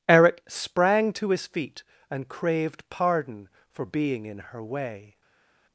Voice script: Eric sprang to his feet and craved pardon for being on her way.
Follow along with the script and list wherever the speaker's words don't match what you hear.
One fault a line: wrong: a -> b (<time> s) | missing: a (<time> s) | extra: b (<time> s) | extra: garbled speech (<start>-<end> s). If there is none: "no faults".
wrong: on -> in (4.2 s)